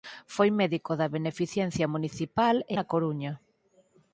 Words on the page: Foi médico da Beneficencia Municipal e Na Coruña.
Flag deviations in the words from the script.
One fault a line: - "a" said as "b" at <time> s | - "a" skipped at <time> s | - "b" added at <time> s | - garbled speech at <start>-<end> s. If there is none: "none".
none